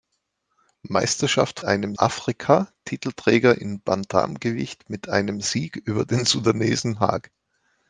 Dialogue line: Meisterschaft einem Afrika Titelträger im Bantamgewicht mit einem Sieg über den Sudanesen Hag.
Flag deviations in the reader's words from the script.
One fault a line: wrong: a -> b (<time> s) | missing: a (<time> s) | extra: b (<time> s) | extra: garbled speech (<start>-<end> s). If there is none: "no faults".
no faults